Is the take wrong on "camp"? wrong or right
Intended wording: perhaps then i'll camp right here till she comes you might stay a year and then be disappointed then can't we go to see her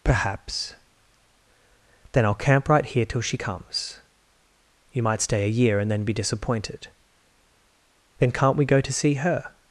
right